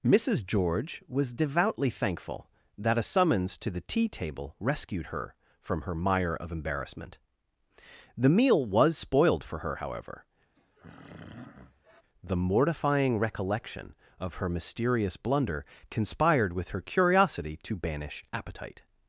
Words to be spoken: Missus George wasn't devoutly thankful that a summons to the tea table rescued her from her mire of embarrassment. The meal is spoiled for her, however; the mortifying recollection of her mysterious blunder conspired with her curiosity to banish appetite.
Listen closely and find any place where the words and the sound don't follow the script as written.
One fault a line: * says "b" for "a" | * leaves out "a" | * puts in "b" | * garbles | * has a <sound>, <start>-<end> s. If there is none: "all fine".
* says "was" for "wasn't"
* says "was" for "is"
* has a throat clearing, 10.5-12.0 s